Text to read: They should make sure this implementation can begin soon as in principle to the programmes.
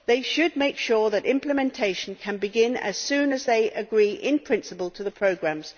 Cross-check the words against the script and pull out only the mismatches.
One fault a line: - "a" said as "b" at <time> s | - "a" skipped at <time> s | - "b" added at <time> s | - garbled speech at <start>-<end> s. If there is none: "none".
- "this" said as "that" at 1.1 s
- "as" added at 2.8 s
- "they agree" added at 3.4 s